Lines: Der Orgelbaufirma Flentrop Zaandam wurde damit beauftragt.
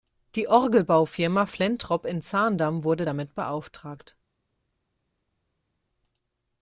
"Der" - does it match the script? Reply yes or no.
no